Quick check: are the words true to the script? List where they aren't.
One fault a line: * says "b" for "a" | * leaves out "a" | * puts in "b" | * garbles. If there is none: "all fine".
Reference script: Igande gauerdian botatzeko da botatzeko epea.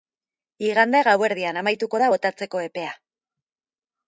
* says "amaituko" for "botatzeko"